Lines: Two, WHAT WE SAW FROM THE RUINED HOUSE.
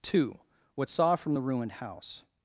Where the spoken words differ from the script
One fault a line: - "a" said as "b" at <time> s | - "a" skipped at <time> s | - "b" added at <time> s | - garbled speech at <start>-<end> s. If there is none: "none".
- "WE" skipped at 0.9 s